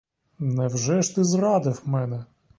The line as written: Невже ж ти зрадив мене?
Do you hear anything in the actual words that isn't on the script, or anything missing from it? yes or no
no